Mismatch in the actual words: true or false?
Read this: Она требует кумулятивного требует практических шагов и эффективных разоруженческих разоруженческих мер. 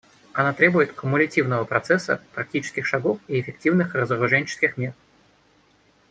true